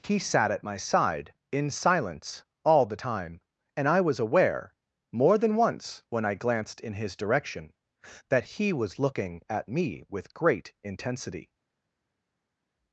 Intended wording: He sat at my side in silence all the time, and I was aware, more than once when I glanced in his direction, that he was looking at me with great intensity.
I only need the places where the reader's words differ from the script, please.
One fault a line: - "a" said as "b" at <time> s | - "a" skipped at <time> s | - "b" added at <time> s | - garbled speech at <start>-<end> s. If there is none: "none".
none